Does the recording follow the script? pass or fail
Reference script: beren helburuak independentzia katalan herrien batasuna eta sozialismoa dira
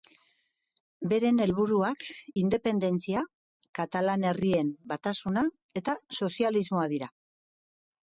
pass